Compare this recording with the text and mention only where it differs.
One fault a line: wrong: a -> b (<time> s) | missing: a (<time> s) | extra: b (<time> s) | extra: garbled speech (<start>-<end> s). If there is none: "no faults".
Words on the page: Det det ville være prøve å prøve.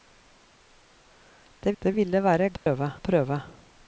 no faults